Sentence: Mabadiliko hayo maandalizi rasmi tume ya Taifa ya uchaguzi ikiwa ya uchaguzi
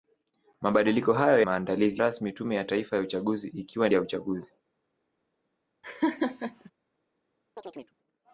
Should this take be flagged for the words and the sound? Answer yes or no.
yes